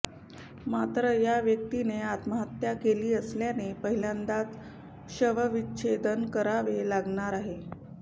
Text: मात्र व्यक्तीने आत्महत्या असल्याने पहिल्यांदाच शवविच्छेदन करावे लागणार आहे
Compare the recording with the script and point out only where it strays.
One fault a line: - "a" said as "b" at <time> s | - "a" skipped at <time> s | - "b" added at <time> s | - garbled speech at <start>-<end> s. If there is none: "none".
- "या" added at 1.1 s
- "केली" added at 2.7 s